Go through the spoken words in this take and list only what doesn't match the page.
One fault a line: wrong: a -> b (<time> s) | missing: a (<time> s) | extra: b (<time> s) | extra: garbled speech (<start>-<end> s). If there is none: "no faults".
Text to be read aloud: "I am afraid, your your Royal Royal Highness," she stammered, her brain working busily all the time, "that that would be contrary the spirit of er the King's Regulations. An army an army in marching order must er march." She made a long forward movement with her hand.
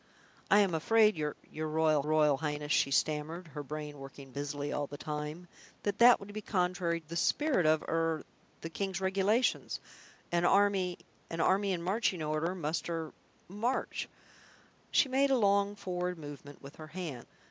no faults